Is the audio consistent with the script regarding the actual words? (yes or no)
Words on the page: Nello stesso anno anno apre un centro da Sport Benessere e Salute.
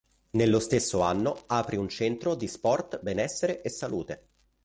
no